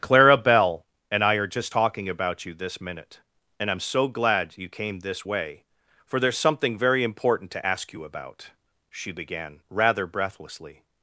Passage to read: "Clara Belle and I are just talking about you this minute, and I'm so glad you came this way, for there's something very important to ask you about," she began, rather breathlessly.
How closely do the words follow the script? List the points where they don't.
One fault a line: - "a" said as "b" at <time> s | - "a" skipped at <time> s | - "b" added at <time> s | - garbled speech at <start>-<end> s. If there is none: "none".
none